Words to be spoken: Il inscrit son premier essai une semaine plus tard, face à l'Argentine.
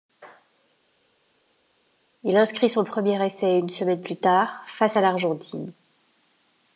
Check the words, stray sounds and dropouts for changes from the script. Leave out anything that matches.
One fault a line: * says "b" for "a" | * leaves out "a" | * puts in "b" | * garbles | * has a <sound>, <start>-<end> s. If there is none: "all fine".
all fine